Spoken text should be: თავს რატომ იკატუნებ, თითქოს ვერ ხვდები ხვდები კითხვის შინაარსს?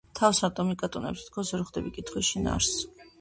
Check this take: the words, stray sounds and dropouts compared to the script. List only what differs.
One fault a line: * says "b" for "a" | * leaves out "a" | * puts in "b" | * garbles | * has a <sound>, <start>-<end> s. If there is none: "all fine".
* leaves out "ხვდები"